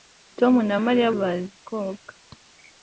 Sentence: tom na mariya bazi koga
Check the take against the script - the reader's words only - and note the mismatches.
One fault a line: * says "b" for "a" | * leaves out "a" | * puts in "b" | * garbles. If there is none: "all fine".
all fine